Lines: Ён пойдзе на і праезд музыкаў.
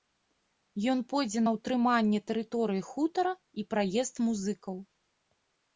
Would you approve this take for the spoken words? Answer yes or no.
no